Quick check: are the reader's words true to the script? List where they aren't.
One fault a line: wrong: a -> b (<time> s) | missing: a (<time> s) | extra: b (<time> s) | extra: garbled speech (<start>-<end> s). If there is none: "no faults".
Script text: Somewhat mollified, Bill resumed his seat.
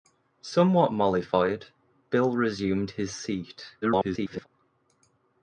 extra: garbled speech (3.8-4.5 s)